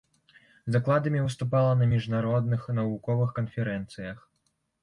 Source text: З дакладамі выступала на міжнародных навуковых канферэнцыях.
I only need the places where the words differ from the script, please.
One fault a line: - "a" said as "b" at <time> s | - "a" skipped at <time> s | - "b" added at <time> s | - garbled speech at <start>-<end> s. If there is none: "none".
none